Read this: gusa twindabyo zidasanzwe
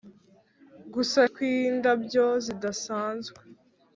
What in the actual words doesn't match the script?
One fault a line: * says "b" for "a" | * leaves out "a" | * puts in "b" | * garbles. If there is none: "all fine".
all fine